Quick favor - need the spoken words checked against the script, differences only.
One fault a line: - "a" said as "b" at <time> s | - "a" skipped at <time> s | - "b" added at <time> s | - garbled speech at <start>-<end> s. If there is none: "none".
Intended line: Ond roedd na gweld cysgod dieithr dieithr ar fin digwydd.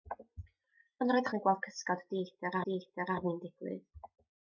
none